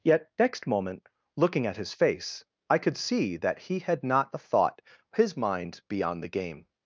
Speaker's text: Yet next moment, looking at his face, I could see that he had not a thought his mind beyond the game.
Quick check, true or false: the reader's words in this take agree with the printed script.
true